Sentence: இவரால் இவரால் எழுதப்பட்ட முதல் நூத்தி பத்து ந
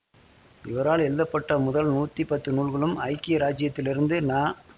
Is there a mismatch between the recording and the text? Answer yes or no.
yes